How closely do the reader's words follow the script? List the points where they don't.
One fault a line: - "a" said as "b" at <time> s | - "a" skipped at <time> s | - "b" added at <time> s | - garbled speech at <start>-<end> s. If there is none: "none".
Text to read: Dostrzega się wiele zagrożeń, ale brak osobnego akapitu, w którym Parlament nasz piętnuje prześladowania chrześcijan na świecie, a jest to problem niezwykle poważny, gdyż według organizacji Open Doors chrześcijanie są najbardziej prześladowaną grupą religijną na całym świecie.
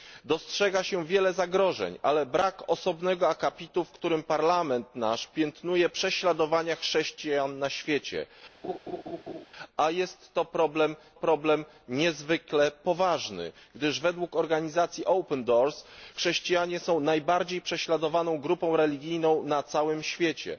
- "problem" added at 11.1 s